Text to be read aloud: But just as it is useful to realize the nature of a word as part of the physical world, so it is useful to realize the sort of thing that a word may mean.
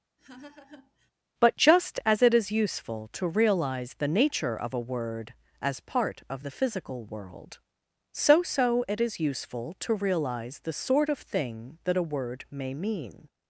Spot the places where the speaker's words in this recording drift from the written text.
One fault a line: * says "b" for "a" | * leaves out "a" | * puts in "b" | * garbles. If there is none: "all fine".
* puts in "so"